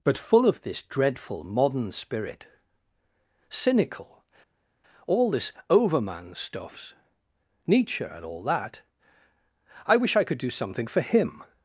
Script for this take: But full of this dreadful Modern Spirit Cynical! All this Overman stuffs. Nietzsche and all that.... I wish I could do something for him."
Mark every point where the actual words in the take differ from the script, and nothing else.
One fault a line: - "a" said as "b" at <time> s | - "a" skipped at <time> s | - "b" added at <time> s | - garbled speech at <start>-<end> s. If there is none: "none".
none